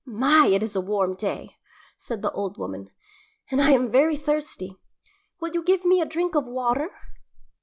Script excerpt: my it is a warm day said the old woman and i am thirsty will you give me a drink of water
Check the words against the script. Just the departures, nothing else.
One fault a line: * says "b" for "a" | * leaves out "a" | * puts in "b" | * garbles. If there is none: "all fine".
* puts in "very"